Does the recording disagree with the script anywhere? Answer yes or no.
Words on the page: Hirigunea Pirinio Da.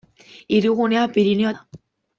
no